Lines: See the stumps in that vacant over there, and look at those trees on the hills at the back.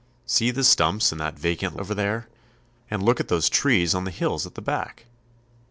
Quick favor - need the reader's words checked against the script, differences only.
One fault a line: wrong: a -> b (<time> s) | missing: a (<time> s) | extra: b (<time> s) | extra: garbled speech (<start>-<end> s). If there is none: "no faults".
no faults